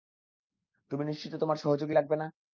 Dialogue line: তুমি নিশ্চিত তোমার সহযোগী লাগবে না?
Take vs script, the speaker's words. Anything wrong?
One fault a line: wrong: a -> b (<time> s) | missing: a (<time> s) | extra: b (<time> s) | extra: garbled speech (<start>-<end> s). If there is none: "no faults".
no faults